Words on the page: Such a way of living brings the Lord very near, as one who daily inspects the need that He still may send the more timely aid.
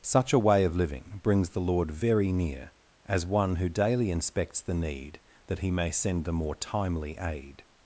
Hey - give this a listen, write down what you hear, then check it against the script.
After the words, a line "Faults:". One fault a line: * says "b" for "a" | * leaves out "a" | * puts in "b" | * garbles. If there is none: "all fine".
Such a way of living brings the Lord very near, as one who daily inspects the need that He may send the more timely aid.
Faults:
* leaves out "still"